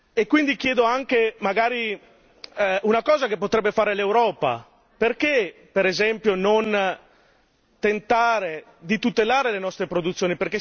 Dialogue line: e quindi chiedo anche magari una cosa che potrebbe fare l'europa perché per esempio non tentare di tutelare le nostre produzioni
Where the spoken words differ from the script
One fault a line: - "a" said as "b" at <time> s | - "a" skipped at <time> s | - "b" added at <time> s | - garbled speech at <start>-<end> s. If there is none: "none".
none